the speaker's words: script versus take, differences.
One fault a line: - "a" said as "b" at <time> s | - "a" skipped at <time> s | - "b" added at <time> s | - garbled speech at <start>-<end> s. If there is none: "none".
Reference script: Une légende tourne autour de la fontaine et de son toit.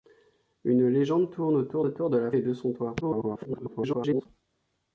- "autour" added at 1.8 s
- "fontaine" skipped at 2.3 s
- garbled speech at 3.0-4.3 s